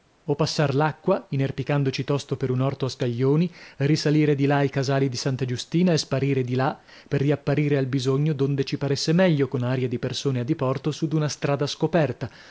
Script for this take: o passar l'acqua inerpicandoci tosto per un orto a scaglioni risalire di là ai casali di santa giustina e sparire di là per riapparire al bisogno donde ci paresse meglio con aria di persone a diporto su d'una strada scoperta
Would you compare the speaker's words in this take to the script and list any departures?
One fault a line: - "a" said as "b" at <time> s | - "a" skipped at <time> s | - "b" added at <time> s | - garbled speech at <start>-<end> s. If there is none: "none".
none